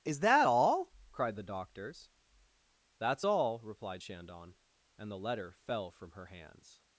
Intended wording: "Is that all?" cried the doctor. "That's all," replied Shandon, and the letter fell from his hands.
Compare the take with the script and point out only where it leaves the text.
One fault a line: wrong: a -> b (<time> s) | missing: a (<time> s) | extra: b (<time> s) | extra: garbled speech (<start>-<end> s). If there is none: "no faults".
wrong: doctor -> doctors (1.4 s)
wrong: his -> her (6.1 s)